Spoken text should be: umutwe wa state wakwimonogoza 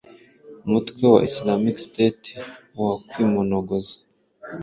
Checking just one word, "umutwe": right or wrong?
right